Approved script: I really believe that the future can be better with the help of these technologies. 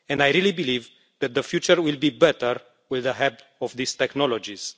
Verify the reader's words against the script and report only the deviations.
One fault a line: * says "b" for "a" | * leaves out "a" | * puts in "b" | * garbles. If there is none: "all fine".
* says "will" for "can"